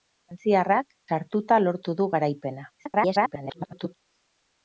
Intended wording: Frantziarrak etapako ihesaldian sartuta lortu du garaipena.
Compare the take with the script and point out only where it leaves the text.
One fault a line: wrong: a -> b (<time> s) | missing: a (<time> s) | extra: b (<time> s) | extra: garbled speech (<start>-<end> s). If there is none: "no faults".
missing: etapako ihesaldian (0.9 s)
extra: garbled speech (2.8-4.0 s)